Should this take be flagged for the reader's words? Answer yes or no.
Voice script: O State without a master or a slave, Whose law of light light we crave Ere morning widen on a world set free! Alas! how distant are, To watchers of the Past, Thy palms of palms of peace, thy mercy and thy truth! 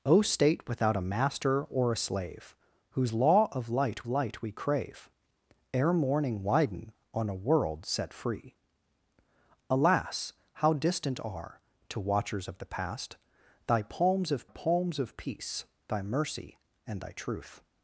no